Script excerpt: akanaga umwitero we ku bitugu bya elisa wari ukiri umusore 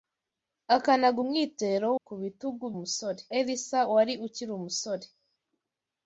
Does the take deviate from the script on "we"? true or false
true